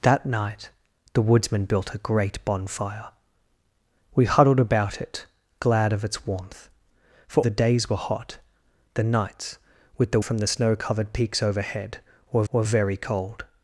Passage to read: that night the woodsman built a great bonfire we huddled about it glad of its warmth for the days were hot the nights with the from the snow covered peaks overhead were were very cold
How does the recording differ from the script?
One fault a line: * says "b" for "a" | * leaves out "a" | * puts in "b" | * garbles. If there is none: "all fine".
all fine